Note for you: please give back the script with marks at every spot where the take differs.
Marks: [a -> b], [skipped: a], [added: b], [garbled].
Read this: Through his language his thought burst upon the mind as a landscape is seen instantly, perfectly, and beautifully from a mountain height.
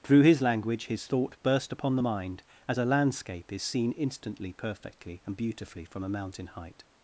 Through his language his thought burst upon the mind as a landscape is seen instantly, perfectly, and beautifully from a mountain height.